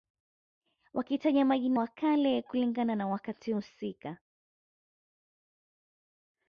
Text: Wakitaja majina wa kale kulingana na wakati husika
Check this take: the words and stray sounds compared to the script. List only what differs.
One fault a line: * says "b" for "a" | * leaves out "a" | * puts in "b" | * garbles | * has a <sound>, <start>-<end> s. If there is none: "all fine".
all fine